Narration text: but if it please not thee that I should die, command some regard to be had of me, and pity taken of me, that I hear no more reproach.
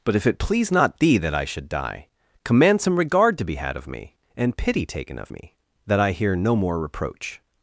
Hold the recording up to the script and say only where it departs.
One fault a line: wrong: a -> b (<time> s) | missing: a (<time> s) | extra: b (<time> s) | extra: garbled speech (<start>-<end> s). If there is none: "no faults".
no faults